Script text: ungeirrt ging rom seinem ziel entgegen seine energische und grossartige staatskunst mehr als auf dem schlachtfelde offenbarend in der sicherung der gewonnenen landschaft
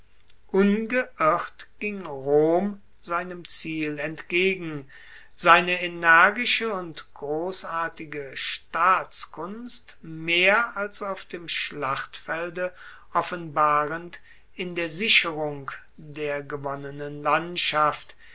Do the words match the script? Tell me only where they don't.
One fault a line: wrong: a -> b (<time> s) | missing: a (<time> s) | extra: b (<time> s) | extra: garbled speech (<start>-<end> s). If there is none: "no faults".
no faults